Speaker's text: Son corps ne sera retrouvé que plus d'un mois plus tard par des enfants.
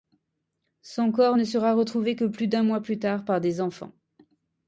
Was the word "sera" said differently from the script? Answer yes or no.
no